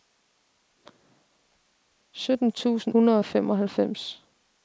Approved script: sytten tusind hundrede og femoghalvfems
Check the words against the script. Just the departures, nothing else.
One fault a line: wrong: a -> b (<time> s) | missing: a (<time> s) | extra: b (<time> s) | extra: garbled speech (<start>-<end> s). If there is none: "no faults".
no faults